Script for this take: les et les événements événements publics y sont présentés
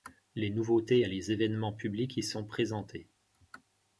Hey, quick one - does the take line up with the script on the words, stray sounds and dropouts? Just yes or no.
no